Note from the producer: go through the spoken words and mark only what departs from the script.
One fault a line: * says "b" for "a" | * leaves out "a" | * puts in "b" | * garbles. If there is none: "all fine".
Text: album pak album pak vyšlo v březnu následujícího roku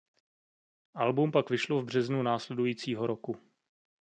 * leaves out "album pak"